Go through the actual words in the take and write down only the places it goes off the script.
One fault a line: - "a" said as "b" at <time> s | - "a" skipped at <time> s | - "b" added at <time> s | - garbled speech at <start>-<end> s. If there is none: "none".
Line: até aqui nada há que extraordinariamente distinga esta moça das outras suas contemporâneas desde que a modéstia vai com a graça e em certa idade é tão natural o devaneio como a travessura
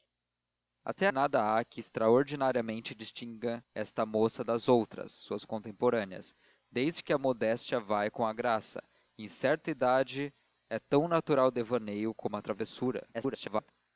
- "aqui" skipped at 1.1 s
- garbled speech at 13.1-13.7 s